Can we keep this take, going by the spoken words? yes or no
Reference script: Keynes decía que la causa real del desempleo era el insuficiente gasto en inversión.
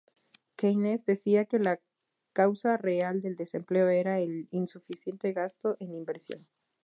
yes